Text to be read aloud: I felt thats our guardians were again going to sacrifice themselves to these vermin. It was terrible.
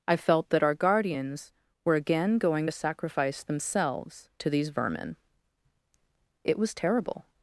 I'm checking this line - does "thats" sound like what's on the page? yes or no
no